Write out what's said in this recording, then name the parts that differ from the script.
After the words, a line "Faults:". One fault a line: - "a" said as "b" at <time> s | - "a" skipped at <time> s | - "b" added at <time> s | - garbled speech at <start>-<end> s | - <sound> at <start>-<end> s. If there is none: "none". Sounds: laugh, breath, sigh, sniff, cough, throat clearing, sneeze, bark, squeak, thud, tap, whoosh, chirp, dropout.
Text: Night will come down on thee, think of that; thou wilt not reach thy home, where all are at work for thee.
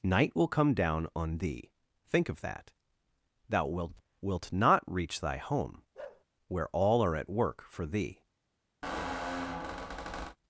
Night will come down on thee, think of that; thou wilt wilt not reach thy home, where all are at work for thee.
Faults:
- "wilt" added at 4.2 s
- bark at 5.9-6.2 s
- squeak at 8.8-10.4 s